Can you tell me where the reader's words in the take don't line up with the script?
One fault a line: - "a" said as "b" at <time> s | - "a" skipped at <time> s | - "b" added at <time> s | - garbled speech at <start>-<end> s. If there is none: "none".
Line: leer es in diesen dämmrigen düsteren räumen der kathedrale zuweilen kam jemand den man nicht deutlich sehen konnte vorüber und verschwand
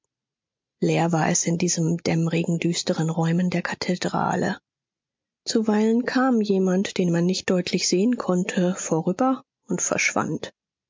- "war" added at 1.1 s